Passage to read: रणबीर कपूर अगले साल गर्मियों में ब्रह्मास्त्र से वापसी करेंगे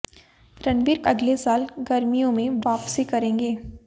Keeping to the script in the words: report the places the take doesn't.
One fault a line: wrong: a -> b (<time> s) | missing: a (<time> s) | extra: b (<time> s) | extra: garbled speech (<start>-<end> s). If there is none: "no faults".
missing: कपूर (1.0 s)
missing: ब्रह्मास्त्र से (2.6 s)